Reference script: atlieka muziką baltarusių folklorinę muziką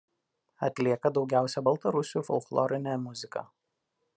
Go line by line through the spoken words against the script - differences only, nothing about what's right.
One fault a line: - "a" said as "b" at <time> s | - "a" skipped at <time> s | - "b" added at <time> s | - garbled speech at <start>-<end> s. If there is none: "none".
- "muziką" said as "daugiausia" at 1.2 s